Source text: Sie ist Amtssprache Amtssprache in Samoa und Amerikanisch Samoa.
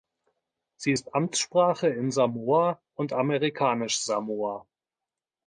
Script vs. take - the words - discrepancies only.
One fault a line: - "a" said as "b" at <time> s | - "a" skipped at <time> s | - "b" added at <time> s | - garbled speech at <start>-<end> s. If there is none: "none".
- "Amtssprache" skipped at 1.9 s